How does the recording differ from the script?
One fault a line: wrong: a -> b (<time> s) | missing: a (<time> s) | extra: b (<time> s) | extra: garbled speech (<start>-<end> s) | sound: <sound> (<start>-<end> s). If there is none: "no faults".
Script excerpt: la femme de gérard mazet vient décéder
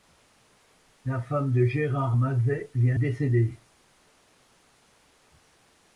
no faults